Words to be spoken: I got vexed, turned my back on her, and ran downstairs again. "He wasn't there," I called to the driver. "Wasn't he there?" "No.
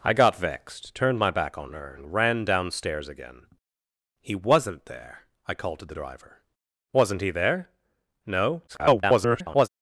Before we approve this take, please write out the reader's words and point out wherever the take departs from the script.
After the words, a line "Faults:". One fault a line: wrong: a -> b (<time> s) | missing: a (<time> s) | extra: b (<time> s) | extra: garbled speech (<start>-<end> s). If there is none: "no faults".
I got vexed, turned my back on her, and ran downstairs again. "He wasn't there," I called to the driver. "Wasn't he there?" "No. [garbled]
Faults:
extra: garbled speech (8.7-9.7 s)